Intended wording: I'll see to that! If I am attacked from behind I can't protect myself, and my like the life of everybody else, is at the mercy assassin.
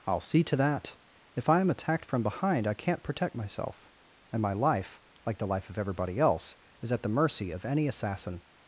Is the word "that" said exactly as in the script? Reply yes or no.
yes